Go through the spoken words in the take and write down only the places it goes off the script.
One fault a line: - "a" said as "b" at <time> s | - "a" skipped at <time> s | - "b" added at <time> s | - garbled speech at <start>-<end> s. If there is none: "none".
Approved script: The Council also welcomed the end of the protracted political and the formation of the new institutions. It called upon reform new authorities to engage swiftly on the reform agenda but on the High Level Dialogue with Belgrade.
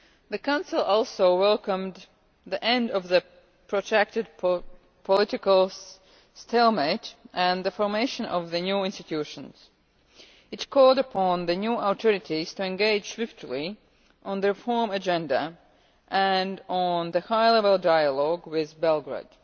- "stalemate" added at 6.3 s
- "reform" said as "the" at 11.4 s
- "but" said as "and" at 16.1 s